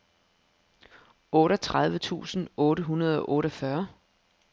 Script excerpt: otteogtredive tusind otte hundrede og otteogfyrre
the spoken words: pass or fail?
pass